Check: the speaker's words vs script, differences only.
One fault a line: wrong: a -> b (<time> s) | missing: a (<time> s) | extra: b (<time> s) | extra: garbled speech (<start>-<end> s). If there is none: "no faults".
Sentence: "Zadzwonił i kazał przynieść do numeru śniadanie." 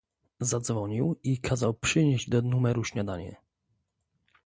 no faults